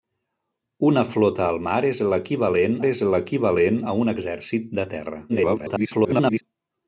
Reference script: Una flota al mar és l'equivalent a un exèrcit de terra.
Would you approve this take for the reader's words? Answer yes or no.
no